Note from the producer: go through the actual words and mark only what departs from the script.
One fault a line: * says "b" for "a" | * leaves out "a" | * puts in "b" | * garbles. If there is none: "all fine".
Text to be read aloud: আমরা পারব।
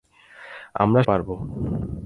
all fine